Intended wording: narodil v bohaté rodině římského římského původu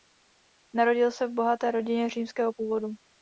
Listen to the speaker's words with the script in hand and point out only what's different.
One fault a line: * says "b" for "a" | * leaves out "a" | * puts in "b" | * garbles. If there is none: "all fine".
* puts in "se"
* leaves out "římského"